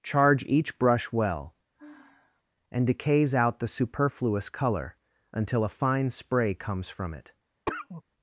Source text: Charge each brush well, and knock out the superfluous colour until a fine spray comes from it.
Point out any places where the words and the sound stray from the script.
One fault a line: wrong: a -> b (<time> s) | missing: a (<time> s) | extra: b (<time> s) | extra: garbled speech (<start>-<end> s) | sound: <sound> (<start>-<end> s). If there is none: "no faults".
sound: sigh (1.8-2.4 s)
wrong: knock -> decays (2.9 s)
sound: cough (7.7-8.0 s)